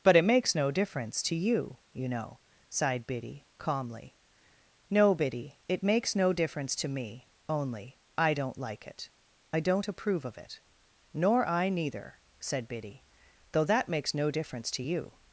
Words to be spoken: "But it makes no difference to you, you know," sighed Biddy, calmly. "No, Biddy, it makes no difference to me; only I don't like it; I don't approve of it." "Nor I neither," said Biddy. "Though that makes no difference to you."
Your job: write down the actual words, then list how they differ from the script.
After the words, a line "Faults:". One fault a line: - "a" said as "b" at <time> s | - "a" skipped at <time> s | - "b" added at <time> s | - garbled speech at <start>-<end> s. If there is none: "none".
"But it makes no difference to you, you know," sighed Biddy, calmly. "No, Biddy, it makes no difference to me; only I don't like it; I don't approve of it." "Nor I neither," said Biddy. "Though that makes no difference to you."
Faults:
none